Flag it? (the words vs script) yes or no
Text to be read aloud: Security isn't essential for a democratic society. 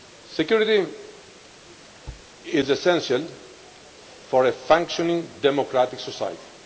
yes